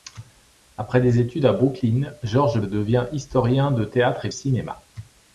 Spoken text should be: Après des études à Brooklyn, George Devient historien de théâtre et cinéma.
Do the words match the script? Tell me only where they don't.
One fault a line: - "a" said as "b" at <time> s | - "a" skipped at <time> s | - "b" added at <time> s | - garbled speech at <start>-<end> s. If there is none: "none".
none